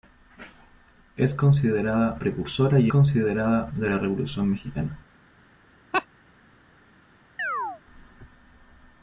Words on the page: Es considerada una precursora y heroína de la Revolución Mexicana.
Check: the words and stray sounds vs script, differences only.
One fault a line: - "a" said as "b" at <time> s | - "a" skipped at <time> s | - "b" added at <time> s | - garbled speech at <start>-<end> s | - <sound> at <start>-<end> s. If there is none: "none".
- "una" skipped at 2.2 s
- "heroína" said as "considerada" at 2.9 s
- laugh at 5.9-6.1 s
- chirp at 7.4-7.8 s